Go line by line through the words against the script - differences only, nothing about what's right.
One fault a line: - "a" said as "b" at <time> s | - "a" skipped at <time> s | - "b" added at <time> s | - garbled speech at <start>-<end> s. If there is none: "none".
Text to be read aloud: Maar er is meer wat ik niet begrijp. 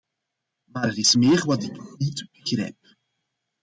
none